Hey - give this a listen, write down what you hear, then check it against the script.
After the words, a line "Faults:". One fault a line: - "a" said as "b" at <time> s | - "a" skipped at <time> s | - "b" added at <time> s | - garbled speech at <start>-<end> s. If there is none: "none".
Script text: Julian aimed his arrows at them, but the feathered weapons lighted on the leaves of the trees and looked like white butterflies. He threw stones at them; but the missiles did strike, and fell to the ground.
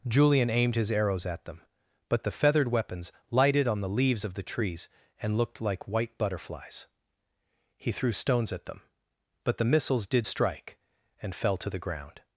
Julian aimed his arrows at them, but the feathered weapons lighted on the leaves of the trees and looked like white butterflies. He threw stones at them; but the missiles did strike, and fell to the ground.
Faults:
none